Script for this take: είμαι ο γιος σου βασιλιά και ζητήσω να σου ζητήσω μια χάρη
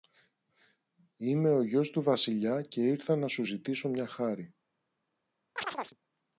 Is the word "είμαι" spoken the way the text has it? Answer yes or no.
yes